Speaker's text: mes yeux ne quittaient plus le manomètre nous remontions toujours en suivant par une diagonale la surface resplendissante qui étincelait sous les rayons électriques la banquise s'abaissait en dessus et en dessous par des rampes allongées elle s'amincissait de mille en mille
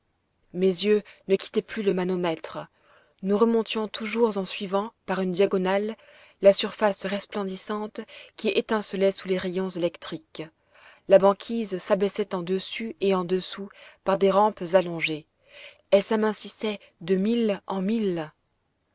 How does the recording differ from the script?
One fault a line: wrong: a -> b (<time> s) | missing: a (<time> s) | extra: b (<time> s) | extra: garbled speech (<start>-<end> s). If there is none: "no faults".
no faults